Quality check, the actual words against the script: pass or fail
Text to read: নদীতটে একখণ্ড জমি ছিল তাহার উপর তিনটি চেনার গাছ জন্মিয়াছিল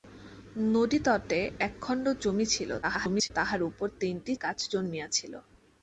fail